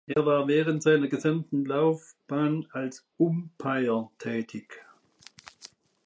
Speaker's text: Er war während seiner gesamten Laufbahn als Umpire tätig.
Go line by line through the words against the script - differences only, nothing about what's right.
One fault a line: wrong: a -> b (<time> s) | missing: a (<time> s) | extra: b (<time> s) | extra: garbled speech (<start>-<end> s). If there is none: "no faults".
no faults